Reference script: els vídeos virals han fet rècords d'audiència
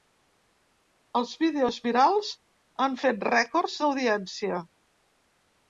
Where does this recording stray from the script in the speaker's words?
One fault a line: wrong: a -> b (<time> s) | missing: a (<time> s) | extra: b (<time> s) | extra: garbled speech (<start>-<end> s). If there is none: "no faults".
no faults